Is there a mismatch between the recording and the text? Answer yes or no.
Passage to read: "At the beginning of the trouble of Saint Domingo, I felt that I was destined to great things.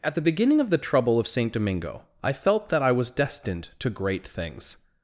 no